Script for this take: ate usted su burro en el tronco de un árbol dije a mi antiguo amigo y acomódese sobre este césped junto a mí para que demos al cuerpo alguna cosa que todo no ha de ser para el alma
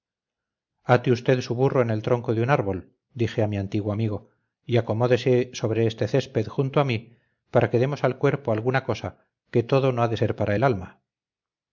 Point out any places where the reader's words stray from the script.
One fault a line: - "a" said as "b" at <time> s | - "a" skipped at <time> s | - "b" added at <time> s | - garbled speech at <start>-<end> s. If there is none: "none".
none